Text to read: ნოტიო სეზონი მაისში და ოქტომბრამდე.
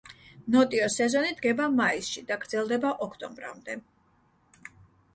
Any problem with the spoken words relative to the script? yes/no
yes